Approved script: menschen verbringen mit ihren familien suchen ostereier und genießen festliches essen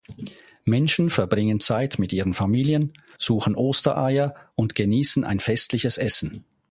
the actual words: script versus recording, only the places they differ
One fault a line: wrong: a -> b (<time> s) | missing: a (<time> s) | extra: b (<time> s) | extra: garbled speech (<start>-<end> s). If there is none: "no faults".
extra: zeit (1.6 s)
extra: ein (5.2 s)